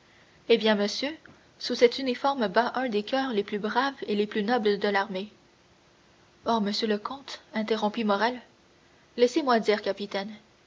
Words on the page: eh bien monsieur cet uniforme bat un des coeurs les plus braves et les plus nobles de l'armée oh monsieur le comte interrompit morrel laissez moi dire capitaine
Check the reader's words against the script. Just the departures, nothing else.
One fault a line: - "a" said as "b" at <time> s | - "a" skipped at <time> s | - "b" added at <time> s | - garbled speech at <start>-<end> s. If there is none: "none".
- "sous" added at 1.6 s